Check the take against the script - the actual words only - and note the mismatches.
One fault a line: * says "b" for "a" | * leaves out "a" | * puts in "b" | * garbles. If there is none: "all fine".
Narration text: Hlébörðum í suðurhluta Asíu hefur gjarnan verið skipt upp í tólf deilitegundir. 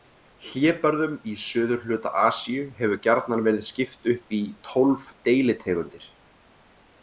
all fine